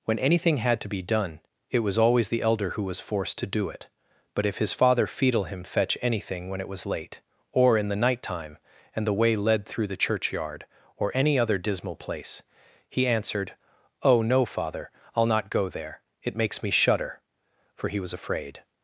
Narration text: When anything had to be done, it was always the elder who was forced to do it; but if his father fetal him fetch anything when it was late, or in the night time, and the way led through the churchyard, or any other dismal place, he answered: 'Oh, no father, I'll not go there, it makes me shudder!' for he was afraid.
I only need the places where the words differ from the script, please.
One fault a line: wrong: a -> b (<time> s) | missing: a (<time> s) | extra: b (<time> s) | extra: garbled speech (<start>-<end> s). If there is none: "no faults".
no faults